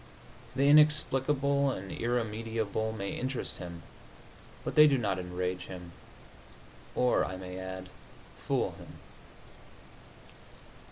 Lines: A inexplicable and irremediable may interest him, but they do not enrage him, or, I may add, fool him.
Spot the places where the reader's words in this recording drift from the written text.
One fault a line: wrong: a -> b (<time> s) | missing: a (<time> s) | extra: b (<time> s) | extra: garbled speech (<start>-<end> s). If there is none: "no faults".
wrong: A -> The (0.6 s)